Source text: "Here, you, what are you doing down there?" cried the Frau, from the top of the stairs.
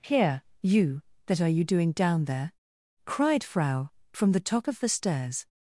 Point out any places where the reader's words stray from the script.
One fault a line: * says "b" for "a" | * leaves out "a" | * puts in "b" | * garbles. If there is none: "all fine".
* says "that" for "what"
* leaves out "the"